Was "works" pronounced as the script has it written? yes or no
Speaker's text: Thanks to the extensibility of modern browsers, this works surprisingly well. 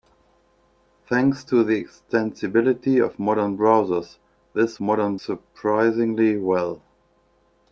no